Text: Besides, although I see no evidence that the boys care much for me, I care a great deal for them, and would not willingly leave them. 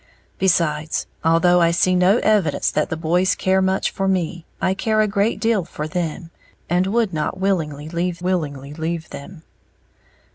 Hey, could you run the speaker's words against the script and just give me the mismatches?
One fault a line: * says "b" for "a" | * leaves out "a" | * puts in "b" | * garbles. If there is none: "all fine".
* puts in "willingly leave"